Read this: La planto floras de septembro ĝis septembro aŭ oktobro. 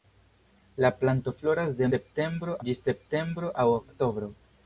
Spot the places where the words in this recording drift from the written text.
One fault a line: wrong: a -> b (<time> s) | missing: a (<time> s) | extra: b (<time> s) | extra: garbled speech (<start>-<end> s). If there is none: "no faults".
no faults